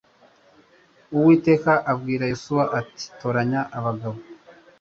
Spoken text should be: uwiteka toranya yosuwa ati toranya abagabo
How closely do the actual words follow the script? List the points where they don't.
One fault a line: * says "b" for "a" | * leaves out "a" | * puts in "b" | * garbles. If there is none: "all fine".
* says "abwira" for "toranya"